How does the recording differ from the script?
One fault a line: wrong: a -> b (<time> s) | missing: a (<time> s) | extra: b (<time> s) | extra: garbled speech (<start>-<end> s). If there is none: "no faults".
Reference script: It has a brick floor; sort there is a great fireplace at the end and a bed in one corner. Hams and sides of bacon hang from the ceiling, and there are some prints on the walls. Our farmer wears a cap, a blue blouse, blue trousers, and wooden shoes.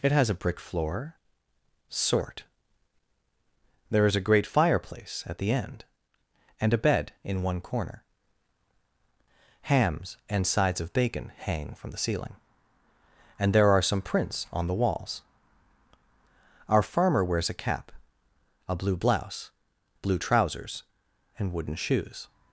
no faults